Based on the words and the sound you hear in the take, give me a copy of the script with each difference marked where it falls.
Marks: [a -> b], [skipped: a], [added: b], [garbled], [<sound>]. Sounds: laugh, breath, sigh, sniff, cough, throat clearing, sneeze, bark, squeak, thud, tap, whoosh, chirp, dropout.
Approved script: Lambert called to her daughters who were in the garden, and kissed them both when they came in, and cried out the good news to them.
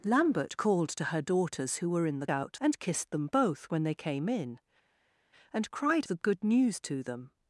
Lambert called to her daughters who were in the [garden, -> out] and kissed them both when they came in, and cried [skipped: out] the good news to them.